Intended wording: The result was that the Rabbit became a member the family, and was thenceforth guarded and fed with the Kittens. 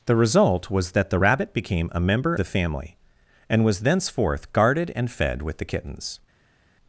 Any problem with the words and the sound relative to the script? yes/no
no